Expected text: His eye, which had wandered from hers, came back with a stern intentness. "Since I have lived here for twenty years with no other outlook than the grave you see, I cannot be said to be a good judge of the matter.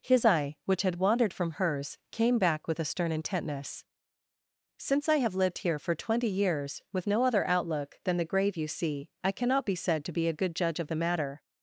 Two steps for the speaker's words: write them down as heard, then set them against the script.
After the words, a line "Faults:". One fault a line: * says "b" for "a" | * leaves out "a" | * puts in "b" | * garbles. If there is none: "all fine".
His eye, which had wandered from hers, came back with a stern intentness. "Since I have lived here for twenty years with no other outlook than the grave you see, I cannot be said to be a good judge of the matter.
Faults:
all fine